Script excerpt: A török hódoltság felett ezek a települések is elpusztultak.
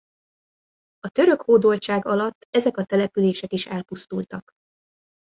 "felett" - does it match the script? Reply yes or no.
no